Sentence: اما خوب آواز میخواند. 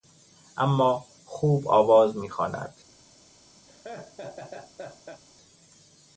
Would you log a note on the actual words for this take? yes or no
no